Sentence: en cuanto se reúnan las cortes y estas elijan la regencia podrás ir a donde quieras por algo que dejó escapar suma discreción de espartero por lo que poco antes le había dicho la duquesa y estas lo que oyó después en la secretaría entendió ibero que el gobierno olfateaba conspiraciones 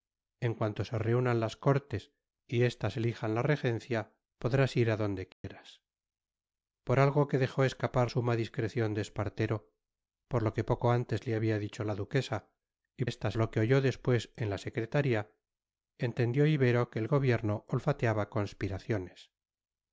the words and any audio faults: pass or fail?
fail